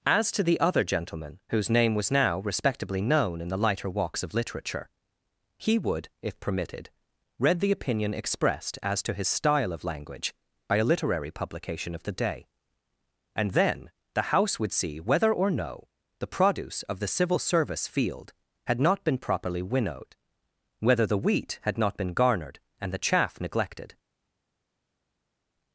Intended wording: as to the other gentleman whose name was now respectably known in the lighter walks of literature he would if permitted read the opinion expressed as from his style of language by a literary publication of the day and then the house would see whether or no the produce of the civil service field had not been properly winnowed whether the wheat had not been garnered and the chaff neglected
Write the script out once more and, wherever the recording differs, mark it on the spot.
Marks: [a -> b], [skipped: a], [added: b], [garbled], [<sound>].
as to the other gentleman whose name was now respectably known in the lighter walks of literature he would if permitted read the opinion expressed as [from -> to] his style of language by a literary publication of the day and then the house would see whether or no the produce of the civil service field had not been properly winnowed whether the wheat had not been garnered and the chaff neglected